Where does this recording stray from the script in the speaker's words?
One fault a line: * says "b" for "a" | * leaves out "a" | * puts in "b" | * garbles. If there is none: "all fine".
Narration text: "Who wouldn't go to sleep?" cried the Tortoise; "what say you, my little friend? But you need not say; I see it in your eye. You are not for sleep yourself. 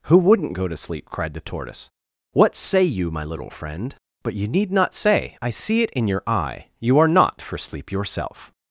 all fine